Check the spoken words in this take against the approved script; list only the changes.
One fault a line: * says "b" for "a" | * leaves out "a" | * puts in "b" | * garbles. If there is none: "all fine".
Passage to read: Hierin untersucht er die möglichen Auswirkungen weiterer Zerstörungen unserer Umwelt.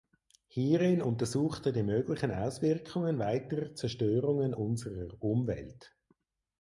all fine